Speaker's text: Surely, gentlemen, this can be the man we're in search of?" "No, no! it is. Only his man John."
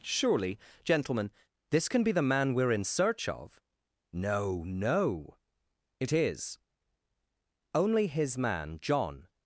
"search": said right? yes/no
yes